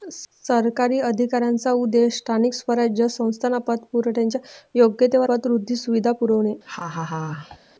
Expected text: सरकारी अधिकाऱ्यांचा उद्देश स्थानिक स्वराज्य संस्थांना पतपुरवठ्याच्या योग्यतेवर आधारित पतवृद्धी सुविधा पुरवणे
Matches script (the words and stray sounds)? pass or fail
fail